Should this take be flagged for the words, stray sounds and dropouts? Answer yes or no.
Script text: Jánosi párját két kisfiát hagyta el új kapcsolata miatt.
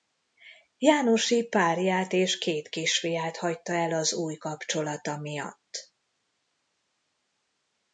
yes